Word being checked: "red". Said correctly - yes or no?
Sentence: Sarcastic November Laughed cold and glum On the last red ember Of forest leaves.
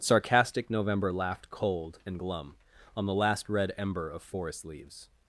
yes